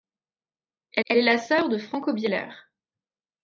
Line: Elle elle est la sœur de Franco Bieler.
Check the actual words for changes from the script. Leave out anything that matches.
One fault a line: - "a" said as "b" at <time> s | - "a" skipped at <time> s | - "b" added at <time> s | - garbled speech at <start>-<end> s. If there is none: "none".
none